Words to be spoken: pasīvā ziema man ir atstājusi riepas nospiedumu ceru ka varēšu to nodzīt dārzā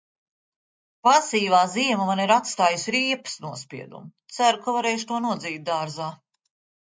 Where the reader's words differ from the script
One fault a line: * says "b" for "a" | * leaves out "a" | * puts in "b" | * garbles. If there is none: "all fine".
all fine